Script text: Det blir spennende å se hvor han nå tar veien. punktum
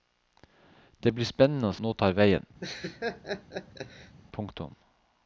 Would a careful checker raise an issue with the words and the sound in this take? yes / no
yes